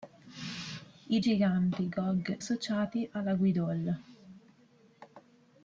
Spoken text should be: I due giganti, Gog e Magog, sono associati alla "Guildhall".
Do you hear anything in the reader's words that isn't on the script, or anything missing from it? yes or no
yes